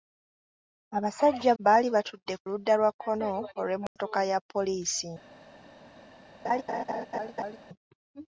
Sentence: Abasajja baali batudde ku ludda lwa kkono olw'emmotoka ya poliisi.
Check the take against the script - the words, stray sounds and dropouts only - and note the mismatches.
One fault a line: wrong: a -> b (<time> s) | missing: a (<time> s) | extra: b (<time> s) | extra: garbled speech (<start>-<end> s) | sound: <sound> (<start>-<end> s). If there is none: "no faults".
sound: dropout (3.9-4.0 s)
sound: laugh (6.4-7.6 s)